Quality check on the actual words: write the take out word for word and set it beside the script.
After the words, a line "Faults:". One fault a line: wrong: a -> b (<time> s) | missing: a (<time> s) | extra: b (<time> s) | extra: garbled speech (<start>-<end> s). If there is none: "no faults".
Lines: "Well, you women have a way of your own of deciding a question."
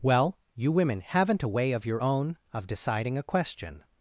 "Well, you women haven't a way of your own of deciding a question."
Faults:
wrong: have -> haven't (1.0 s)